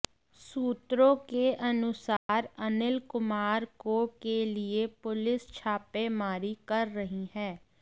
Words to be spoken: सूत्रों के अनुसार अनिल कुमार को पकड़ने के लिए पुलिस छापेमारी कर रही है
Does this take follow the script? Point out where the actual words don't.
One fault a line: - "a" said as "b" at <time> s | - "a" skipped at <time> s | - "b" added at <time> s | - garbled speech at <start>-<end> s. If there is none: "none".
- "पकड़ने" skipped at 4.0 s